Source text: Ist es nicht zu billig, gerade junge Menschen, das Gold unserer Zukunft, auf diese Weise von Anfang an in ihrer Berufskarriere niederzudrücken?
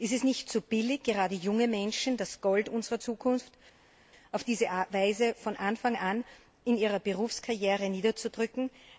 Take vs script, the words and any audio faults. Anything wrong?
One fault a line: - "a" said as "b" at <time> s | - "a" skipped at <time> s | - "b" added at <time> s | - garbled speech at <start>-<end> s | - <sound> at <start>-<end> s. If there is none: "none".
none